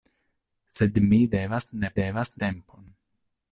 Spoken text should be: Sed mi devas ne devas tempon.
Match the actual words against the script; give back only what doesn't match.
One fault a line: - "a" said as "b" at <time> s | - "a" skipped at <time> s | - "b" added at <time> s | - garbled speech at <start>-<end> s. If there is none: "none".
none